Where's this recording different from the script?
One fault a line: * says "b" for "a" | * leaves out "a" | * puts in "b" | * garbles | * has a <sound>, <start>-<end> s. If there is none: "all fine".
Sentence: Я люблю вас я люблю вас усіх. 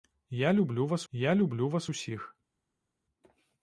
all fine